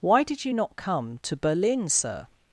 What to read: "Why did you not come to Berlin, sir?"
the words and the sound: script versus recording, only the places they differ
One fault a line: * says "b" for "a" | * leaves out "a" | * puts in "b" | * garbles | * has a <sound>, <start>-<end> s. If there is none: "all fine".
all fine